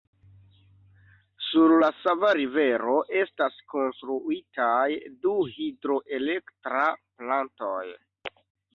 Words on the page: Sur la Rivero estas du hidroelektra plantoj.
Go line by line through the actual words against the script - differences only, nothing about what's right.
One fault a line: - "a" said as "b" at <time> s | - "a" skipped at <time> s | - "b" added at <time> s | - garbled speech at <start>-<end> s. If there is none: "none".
- "Sava" added at 2.0 s
- "konstruitaj" added at 3.8 s